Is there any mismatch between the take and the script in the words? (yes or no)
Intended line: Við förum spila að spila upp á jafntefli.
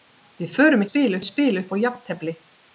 no